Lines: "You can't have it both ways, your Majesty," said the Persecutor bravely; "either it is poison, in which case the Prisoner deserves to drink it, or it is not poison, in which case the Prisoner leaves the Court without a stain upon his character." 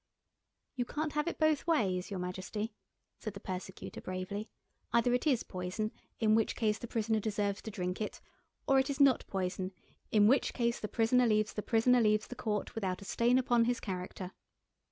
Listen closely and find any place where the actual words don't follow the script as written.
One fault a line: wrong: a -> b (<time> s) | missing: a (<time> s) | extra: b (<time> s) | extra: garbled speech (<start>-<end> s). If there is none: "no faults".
extra: Prisoner leaves the (11.6 s)